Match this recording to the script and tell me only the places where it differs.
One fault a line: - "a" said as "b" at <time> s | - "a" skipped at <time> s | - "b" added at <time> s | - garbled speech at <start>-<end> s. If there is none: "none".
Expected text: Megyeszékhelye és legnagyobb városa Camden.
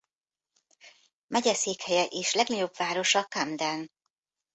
none